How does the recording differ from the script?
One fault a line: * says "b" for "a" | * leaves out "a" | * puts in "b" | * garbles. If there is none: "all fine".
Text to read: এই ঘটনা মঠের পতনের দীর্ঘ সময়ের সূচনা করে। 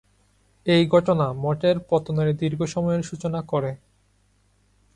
all fine